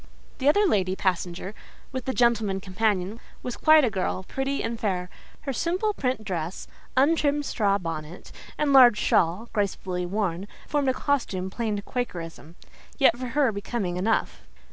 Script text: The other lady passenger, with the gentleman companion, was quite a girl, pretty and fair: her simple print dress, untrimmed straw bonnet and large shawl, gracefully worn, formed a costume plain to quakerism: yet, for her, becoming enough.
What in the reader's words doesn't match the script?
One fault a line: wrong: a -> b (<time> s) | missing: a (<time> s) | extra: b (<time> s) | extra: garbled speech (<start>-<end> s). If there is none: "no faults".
no faults